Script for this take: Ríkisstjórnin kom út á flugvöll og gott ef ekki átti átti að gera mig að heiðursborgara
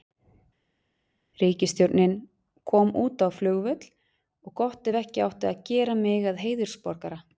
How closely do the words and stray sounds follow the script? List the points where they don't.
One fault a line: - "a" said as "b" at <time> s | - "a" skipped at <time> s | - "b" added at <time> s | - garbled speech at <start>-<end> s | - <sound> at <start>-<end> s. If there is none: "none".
- "átti" skipped at 5.5 s